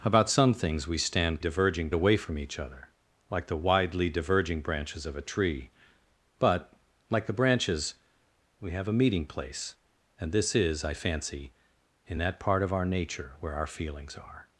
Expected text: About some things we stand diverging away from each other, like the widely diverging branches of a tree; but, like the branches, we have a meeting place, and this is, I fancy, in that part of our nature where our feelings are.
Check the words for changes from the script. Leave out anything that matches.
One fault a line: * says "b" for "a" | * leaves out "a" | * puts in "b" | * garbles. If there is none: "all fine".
all fine